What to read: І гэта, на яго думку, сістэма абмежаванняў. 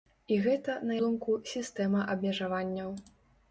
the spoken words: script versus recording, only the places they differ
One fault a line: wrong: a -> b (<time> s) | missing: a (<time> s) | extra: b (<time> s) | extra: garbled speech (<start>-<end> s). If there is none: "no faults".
missing: яго (0.9 s)